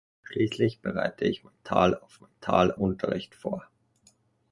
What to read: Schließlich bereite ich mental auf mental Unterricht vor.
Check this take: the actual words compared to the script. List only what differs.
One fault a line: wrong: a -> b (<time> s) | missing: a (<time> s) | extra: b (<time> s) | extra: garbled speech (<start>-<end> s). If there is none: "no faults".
no faults